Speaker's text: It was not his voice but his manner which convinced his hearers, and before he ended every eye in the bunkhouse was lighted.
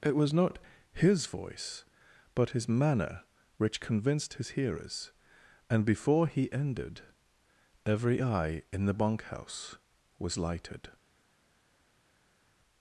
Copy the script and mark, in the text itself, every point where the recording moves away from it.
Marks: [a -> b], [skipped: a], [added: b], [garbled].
It was not his voice but his manner which convinced his hearers, and before he ended every eye in the bunkhouse was lighted.